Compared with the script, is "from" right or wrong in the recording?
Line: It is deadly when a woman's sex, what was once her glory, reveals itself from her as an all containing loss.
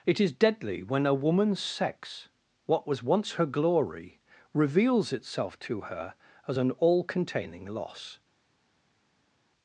wrong